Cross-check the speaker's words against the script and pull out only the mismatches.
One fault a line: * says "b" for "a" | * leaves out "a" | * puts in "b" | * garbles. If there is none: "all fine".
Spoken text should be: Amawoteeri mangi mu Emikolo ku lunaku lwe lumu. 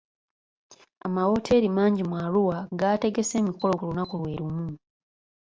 * puts in "Arua gaategese"